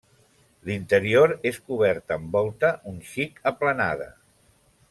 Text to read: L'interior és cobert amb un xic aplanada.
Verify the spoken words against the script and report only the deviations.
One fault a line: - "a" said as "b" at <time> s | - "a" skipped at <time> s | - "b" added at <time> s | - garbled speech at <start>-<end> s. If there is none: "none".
- "volta" added at 2.4 s